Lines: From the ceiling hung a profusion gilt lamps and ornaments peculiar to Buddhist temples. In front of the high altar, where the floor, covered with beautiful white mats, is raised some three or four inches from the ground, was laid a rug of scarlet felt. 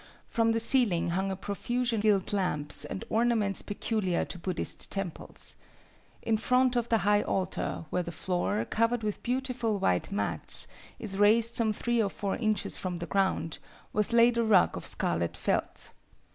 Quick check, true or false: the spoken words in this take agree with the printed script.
true